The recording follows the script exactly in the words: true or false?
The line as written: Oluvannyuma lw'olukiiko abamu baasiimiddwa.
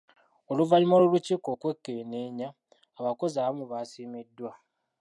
false